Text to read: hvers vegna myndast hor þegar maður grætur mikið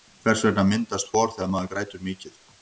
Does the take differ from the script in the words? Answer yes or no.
no